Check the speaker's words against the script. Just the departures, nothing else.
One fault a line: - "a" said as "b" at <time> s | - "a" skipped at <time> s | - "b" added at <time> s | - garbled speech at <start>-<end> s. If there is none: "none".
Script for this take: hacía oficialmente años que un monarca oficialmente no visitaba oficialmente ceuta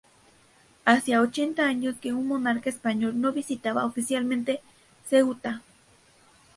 - "oficialmente" said as "ochenta" at 1.2 s
- "oficialmente" said as "español" at 2.7 s